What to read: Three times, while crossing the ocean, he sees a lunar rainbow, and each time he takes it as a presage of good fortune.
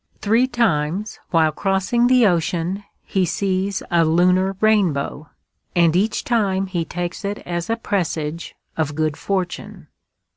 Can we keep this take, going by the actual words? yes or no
yes